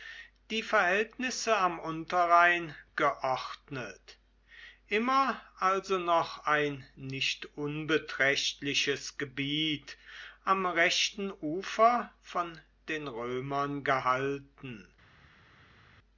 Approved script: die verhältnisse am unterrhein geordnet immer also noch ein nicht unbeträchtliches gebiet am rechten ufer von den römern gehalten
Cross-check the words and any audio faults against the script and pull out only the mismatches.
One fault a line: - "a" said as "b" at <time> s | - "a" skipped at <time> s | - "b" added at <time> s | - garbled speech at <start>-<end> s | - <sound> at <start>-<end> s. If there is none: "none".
none